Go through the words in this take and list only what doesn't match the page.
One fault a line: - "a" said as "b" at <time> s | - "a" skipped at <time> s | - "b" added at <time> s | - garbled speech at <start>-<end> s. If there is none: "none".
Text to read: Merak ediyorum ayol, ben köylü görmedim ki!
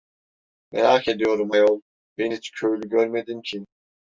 - "hiç" added at 2.3 s